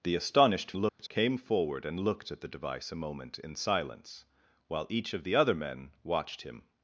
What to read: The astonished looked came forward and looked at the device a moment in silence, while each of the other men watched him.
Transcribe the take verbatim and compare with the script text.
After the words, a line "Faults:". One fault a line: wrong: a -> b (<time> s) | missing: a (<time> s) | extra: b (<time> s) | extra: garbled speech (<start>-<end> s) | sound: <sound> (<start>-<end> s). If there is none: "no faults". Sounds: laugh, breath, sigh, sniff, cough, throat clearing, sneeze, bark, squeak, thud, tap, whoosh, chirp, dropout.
The astonished looked came forward and looked at the device a moment in silence, while each of the other men watched him.
Faults:
sound: dropout (0.9-1.0 s)